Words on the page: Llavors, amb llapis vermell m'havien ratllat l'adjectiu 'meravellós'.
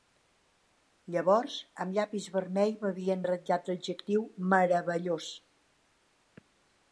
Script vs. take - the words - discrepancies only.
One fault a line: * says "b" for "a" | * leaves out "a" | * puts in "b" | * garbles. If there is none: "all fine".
all fine